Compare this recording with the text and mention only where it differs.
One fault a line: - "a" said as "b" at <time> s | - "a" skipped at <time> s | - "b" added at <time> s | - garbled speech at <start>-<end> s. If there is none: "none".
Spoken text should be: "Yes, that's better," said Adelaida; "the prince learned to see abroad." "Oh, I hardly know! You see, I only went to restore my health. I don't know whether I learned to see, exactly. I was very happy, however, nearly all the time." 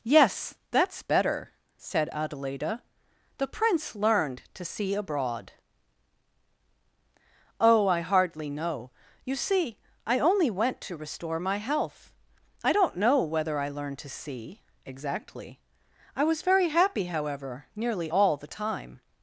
none